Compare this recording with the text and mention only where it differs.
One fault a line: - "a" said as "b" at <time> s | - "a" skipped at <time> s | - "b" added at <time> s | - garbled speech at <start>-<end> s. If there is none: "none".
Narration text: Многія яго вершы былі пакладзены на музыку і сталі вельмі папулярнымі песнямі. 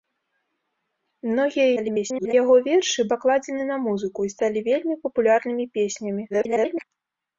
- garbled speech at 1.8-2.3 s
- "былі" skipped at 3.0 s
- garbled speech at 6.3-6.8 s